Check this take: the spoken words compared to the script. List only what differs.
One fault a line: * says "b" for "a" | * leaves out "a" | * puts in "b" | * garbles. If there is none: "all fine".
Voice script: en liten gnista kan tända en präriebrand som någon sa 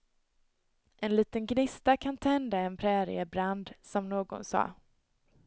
all fine